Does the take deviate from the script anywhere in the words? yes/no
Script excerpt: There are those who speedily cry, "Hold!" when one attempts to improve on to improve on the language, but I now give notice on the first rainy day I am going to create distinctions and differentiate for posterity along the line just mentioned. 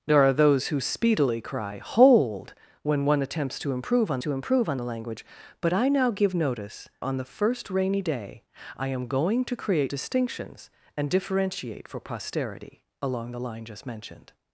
no